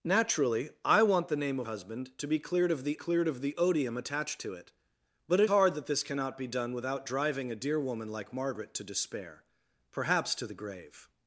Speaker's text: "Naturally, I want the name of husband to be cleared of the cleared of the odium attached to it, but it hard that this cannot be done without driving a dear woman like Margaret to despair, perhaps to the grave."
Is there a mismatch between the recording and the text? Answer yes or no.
no